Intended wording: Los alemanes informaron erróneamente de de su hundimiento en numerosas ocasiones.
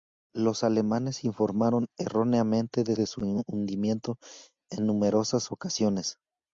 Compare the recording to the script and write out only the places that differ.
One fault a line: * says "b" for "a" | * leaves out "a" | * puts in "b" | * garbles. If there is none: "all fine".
all fine